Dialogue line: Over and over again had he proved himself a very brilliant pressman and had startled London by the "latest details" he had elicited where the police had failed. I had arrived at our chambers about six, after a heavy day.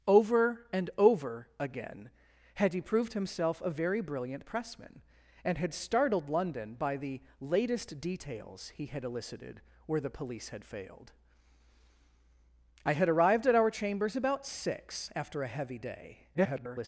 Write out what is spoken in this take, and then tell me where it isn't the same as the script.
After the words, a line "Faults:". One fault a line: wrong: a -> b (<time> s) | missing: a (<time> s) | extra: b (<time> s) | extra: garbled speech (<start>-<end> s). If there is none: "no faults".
Over and over again had he proved himself a very brilliant pressman and had startled London by the "latest details" he had elicited where the police had failed. I had arrived at our chambers about six, after a heavy day. [garbled]
Faults:
extra: garbled speech (16.3-16.9 s)